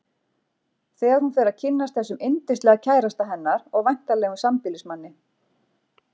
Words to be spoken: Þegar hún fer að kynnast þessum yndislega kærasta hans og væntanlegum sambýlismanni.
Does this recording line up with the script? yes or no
no